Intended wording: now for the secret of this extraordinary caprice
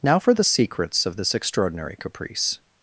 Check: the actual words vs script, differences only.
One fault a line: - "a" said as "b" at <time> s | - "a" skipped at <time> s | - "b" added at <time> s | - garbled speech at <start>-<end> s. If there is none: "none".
- "secret" said as "secrets" at 0.4 s